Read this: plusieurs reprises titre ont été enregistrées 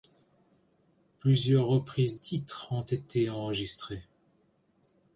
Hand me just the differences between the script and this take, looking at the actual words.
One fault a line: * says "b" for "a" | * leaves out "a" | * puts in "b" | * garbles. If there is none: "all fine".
all fine